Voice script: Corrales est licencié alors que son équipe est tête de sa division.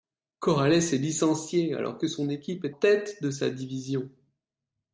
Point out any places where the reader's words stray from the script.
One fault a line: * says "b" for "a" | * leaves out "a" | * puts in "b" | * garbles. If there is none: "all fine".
all fine